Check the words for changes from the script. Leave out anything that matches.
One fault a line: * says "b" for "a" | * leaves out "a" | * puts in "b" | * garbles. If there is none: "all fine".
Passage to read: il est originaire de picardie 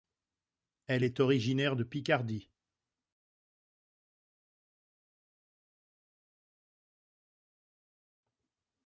* says "elle" for "il"